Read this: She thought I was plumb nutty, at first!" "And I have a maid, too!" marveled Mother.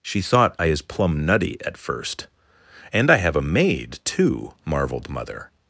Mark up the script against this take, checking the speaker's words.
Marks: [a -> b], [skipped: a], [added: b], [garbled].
She thought I [was -> is] plumb nutty, at first!" "And I have a maid, too!" marveled Mother.